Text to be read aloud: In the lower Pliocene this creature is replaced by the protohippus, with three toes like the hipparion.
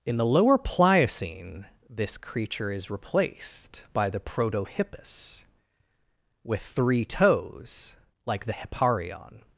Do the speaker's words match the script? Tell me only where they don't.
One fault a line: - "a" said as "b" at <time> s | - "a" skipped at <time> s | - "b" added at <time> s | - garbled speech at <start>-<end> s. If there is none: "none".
none